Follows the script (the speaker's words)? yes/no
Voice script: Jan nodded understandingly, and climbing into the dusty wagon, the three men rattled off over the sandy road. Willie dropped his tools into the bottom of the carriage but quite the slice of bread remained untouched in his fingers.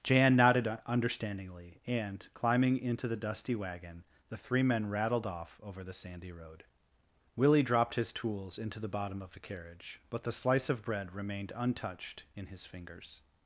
no